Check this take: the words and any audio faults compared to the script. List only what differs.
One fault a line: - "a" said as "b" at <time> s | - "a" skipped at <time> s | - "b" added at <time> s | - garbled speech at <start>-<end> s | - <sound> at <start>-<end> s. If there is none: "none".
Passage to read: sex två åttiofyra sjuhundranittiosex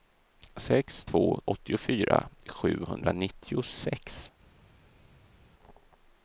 none